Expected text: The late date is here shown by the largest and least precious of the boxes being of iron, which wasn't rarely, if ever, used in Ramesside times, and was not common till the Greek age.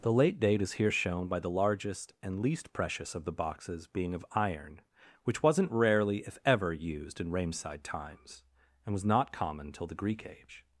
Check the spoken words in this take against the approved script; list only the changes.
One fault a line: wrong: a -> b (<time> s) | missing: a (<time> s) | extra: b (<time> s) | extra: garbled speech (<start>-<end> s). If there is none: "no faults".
no faults